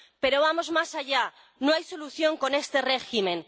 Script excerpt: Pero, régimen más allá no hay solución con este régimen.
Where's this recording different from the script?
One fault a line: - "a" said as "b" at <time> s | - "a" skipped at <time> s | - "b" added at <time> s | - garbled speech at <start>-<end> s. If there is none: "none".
- "régimen" said as "vamos" at 0.5 s